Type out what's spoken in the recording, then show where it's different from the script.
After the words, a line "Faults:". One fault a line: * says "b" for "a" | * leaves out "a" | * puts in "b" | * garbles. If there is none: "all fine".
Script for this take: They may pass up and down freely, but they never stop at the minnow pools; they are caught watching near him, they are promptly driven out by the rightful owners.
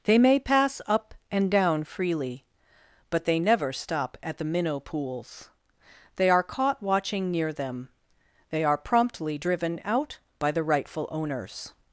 They may pass up and down freely, but they never stop at the minnow pools; they are caught watching near them, they are promptly driven out by the rightful owners.
Faults:
* says "them" for "him"